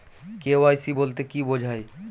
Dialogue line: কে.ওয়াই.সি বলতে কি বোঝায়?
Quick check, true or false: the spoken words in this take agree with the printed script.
true